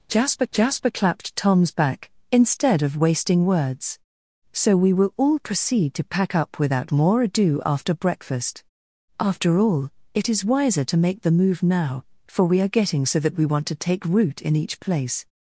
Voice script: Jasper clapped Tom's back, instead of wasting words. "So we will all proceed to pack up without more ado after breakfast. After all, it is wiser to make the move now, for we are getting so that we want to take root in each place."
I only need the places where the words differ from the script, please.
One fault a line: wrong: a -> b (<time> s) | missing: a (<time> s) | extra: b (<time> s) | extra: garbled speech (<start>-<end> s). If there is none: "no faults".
extra: jasper (0.5 s)